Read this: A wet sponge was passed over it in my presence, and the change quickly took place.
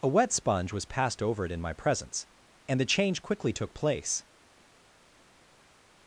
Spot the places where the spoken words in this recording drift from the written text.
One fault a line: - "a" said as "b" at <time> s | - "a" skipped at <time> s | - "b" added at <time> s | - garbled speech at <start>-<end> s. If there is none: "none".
none